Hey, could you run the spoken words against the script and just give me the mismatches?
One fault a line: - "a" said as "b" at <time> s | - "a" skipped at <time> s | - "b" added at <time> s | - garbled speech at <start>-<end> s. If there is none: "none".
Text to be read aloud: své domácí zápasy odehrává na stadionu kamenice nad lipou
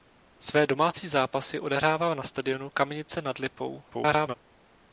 - garbled speech at 3.9-4.3 s